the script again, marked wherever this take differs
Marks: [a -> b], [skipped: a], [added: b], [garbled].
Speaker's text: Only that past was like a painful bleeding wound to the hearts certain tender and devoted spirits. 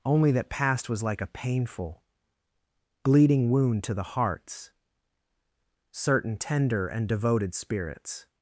Only that past was like a painful bleeding wound to the hearts certain tender and devoted spirits.